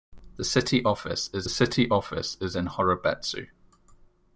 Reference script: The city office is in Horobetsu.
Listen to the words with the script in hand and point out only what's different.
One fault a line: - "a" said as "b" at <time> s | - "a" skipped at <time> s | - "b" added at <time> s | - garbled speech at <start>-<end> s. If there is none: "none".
- "city office is" added at 1.5 s